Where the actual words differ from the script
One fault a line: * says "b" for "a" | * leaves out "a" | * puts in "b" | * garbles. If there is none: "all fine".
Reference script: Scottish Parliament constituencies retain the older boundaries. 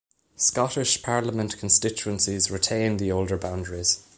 all fine